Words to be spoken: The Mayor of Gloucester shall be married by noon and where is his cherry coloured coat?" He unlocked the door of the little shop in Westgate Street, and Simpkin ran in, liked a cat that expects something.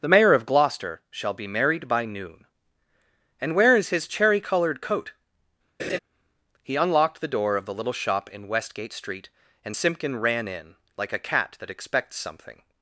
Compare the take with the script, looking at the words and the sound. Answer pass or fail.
fail